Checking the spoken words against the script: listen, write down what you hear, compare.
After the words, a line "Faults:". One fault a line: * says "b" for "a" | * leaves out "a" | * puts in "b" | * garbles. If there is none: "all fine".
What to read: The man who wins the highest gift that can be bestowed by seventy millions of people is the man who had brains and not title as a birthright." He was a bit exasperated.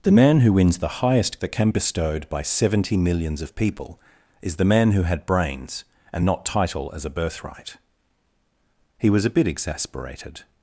The man who wins the highest that can bestowed by seventy millions of people is the man who had brains and not title as a birthright." He was a bit exasperated.
Faults:
* leaves out "gift"
* leaves out "be"